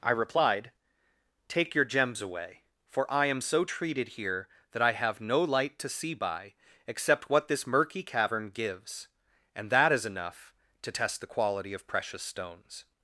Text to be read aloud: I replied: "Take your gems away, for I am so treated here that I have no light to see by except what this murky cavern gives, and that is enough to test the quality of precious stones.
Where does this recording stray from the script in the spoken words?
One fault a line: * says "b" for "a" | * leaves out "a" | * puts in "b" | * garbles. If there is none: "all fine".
all fine